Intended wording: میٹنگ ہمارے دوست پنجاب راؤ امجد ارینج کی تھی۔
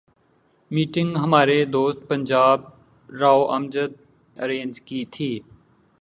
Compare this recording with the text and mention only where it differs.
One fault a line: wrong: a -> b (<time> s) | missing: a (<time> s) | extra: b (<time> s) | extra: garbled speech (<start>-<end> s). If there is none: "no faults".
no faults